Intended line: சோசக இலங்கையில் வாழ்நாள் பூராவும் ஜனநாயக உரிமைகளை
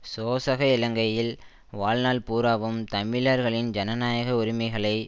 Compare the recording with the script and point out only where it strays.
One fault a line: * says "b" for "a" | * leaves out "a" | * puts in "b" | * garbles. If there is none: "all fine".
* puts in "தமிழர்களின்"